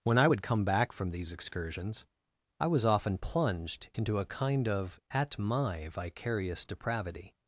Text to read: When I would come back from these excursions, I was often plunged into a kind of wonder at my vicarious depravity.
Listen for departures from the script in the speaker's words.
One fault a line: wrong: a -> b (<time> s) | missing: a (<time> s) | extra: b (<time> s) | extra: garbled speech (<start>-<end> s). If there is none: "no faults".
missing: wonder (5.0 s)